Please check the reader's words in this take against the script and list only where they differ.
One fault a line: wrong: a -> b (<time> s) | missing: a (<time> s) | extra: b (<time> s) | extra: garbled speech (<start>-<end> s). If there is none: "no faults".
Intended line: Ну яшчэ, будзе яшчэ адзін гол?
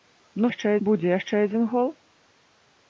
no faults